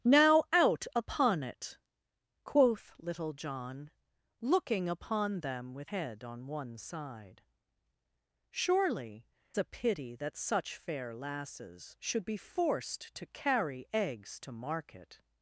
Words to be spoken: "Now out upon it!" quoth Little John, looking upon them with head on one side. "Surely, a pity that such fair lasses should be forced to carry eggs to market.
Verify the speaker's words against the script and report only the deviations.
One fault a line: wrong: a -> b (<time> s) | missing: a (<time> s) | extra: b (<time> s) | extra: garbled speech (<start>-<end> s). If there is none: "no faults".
no faults